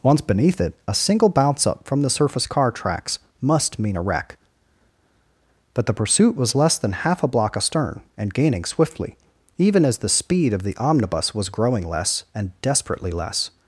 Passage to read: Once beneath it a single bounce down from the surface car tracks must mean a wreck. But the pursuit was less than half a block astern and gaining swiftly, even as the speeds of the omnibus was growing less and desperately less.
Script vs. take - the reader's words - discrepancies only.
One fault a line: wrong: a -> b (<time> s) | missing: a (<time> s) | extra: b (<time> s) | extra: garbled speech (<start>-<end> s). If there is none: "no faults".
wrong: down -> up (1.7 s)
wrong: speeds -> speed (10.1 s)